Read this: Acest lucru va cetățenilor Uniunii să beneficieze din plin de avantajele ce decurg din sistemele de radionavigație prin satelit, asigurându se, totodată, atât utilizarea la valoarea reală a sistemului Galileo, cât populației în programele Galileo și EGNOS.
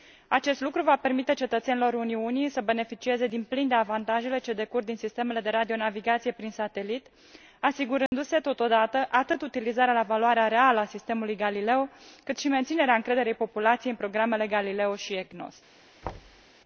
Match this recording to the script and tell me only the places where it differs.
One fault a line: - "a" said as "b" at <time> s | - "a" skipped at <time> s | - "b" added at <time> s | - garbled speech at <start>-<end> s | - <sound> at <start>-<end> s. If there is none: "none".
- "permite" added at 0.9 s
- dropout at 8.1-8.1 s
- "și menținerea încrederii" added at 12.4 s
- thud at 16.0-16.5 s